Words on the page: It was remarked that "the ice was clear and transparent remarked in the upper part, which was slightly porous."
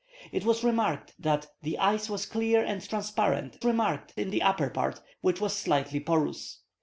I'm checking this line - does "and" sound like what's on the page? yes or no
yes